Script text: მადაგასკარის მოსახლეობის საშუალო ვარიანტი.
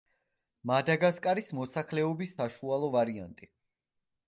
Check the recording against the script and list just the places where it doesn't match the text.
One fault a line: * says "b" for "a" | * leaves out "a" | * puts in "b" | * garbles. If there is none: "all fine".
all fine